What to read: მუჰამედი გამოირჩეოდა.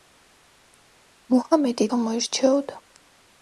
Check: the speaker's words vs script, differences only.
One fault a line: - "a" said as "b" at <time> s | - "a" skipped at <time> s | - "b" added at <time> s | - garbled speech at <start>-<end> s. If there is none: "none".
none